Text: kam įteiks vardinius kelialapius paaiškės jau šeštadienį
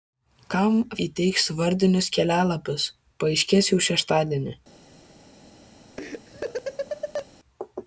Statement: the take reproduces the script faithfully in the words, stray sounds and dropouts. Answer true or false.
false